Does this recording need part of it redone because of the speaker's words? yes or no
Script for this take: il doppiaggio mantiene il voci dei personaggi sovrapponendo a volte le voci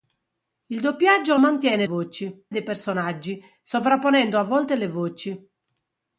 no